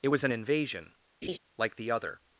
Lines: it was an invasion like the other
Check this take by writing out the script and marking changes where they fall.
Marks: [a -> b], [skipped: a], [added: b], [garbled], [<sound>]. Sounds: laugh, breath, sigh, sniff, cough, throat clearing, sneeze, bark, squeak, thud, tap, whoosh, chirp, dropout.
it was an invasion [laugh] like the other